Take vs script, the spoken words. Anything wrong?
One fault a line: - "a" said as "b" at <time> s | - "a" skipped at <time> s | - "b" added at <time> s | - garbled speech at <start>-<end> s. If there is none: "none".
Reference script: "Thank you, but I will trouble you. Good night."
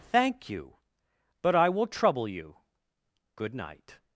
none